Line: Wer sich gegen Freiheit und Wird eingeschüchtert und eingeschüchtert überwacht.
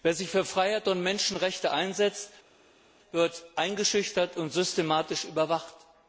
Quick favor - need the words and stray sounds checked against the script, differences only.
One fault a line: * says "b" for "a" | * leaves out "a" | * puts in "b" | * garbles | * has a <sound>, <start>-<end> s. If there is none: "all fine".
* says "für" for "gegen"
* puts in "Menschenrechte einsetzt"
* says "systematisch" for "eingeschüchtert"